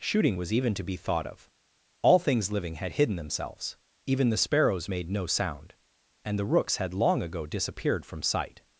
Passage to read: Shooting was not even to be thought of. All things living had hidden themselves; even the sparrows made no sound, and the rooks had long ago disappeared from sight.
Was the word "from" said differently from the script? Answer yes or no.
no